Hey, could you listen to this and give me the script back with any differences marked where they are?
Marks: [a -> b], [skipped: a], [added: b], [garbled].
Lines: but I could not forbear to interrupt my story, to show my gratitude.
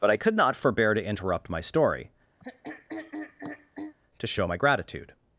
but I could not forbear to interrupt my story, to show my gratitude.